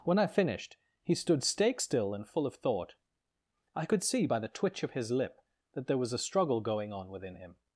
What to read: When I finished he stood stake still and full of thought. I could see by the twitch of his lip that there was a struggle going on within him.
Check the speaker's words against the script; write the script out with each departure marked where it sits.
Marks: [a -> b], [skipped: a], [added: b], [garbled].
When I finished he stood stake still and full of thought. I could see by the twitch of his lip that there was a struggle going on within him.